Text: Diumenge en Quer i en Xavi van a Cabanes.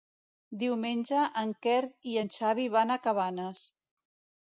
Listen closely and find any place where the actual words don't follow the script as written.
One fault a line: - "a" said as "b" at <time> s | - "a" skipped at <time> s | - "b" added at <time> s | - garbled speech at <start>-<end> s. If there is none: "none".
none